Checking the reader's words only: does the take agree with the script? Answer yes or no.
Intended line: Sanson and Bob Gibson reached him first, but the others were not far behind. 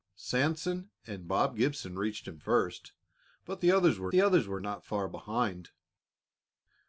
no